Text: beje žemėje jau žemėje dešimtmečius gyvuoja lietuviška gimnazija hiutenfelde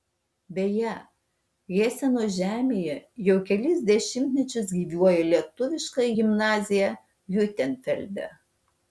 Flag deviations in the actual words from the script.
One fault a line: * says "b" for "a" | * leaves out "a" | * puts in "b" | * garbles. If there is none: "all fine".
* puts in "heseno"
* says "kelis" for "žemėje"